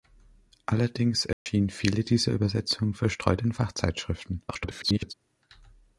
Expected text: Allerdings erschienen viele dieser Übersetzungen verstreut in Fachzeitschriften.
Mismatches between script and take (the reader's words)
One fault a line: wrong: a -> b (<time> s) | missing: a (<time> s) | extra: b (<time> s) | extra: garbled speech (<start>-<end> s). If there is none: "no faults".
extra: garbled speech (4.5-5.1 s)